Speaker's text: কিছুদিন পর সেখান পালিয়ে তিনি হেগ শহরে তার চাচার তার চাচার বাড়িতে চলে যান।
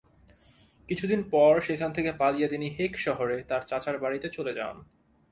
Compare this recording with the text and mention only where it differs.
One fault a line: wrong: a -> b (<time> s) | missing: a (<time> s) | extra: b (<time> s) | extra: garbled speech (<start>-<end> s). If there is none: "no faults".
extra: থেকে (1.9 s)
missing: তার চাচার (4.0 s)